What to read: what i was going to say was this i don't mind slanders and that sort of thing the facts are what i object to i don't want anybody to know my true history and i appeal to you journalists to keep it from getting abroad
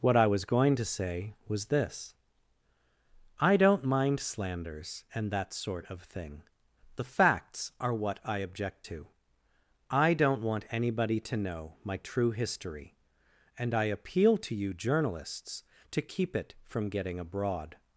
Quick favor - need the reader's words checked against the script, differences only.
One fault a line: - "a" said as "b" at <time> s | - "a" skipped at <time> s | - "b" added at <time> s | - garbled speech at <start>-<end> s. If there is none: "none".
none